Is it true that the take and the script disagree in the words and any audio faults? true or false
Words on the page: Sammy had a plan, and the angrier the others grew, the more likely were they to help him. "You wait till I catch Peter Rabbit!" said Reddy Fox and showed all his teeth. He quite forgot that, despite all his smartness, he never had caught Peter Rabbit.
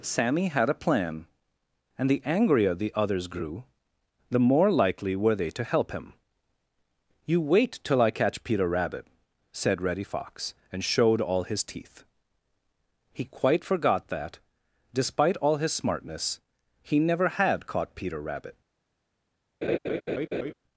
true